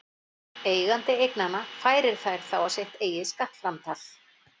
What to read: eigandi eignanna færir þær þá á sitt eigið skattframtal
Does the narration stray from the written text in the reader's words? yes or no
no